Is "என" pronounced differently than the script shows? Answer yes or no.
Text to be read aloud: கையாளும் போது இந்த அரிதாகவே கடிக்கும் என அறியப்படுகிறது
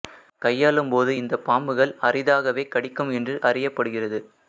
yes